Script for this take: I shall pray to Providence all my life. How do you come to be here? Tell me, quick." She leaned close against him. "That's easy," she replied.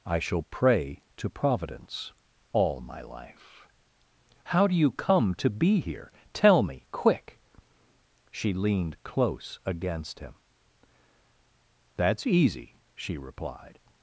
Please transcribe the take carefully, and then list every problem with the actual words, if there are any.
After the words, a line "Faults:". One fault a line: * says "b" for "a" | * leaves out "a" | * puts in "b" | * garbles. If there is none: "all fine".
I shall pray to Providence all my life. How do you come to be here? Tell me, quick." She leaned close against him. "That's easy," she replied.
Faults:
all fine